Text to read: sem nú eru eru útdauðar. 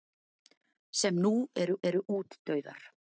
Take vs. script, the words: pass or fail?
pass